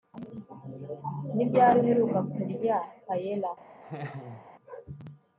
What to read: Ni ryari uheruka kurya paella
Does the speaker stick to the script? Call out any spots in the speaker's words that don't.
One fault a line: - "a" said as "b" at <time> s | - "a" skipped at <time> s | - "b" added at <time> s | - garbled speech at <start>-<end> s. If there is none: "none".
none